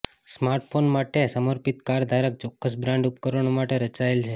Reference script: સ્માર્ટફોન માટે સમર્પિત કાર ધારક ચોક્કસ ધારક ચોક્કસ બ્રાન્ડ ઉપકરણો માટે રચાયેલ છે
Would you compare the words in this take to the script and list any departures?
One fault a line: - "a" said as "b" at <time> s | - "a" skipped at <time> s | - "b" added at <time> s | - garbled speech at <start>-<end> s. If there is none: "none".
- "ધારક ચોક્કસ" skipped at 2.8 s